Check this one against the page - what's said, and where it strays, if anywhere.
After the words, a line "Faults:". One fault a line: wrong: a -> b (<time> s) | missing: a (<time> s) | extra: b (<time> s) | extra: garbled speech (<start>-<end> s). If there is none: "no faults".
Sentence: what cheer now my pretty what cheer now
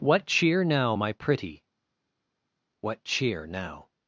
what cheer now my pretty what cheer now
Faults:
no faults